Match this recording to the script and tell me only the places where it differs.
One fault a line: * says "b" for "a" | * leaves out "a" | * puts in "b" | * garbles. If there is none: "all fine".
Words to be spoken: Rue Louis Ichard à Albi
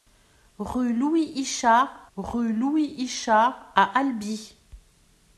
* puts in "rue Louis Ichard"